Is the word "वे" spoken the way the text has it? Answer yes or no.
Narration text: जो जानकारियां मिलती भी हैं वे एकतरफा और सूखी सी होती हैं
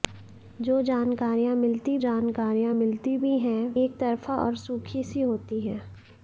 no